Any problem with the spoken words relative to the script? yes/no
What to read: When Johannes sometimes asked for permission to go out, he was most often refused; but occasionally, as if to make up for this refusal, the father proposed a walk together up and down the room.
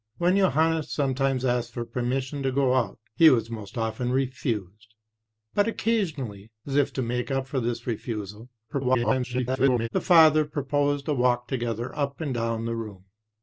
yes